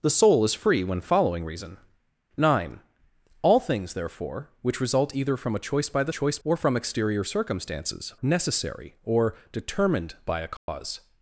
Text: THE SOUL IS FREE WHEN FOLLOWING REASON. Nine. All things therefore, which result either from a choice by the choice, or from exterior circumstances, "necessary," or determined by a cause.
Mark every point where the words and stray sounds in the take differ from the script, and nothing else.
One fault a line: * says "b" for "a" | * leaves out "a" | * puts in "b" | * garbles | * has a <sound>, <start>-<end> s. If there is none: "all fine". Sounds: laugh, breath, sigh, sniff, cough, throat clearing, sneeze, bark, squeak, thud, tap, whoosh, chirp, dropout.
* has a dropout, 10.6-10.7 s